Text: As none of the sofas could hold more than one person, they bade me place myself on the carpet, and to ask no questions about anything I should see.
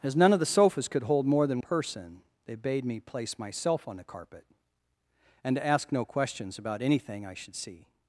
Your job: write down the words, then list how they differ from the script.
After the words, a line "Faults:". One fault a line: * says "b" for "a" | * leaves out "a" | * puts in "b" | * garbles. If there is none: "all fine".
As none of the sofas could hold more than person, they bade me place myself on the carpet, and to ask no questions about anything I should see.
Faults:
* leaves out "one"